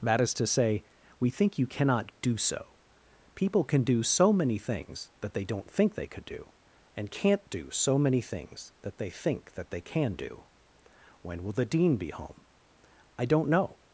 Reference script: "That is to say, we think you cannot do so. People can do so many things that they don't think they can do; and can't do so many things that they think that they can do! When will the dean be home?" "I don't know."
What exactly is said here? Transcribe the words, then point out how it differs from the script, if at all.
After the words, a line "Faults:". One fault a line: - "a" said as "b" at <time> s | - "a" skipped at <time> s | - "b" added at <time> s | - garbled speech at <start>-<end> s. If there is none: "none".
"That is to say, we think you cannot do so. People can do so many things that they don't think they could do; and can't do so many things that they think that they can do! When will the dean be home?" "I don't know."
Faults:
- "can" said as "could" at 6.1 s